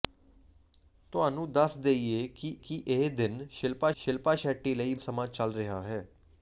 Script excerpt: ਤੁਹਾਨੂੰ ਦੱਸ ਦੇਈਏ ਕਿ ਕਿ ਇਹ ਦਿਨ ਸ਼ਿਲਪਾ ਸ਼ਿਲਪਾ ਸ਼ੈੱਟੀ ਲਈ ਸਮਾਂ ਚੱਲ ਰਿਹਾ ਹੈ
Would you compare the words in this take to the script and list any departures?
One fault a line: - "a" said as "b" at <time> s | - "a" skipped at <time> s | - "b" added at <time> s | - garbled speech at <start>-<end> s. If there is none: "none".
none